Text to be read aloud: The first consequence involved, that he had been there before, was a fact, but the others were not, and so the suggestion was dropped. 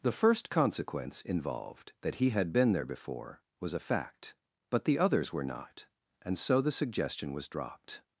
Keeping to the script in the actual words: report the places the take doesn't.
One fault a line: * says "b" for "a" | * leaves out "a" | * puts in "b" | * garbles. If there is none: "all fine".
all fine